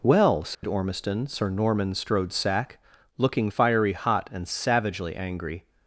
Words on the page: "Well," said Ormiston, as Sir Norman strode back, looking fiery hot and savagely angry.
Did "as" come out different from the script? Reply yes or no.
yes